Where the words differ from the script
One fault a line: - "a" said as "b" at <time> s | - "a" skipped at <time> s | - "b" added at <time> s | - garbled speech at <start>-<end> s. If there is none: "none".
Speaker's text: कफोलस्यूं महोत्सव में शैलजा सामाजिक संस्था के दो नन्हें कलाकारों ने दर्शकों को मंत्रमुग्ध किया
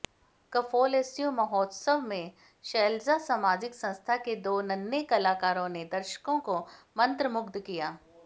none